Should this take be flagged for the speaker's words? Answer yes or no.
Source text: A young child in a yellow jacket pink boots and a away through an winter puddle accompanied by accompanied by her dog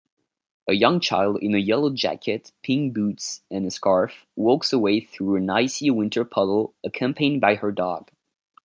yes